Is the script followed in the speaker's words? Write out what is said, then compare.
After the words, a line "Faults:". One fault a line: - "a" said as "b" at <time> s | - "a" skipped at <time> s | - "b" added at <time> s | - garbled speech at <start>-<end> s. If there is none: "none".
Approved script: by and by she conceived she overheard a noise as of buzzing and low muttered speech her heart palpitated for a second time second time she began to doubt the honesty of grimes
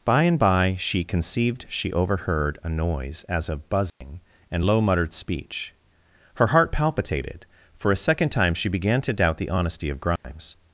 by and by she conceived she overheard a noise as of buzzing and low muttered speech her heart palpitated for a second time she began to doubt the honesty of grimes
Faults:
- "second time" skipped at 8.5 s